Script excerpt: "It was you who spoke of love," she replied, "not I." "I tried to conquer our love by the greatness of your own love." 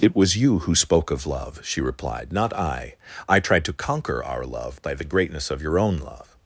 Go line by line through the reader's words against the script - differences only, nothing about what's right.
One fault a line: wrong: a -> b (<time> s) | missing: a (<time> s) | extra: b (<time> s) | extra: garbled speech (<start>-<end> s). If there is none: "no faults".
no faults